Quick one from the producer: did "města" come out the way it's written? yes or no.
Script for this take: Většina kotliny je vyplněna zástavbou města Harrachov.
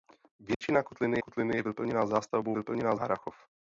no